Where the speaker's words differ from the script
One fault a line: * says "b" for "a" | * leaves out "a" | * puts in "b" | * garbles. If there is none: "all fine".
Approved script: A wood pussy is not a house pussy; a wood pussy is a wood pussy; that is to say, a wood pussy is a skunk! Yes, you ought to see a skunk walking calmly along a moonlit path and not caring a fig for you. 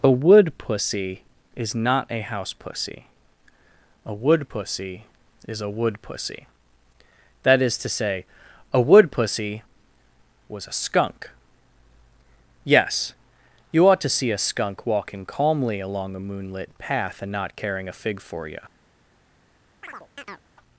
* says "was" for "is"